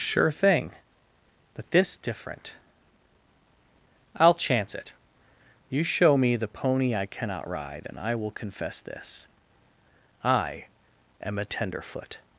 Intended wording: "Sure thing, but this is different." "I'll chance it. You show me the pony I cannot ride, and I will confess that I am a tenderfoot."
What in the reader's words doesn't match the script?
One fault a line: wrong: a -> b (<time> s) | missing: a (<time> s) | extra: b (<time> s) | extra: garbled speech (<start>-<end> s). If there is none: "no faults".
missing: is (2.0 s)
wrong: that -> this (8.8 s)